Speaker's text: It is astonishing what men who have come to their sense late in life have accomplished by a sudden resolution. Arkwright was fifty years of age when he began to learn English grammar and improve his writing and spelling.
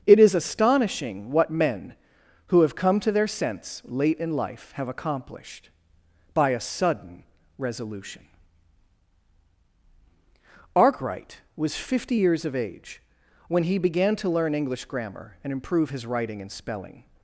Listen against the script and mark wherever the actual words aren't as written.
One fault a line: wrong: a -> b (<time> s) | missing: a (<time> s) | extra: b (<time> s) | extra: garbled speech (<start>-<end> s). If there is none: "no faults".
no faults